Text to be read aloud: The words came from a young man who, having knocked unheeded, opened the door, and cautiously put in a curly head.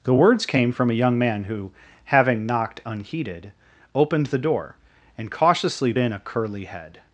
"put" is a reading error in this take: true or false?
true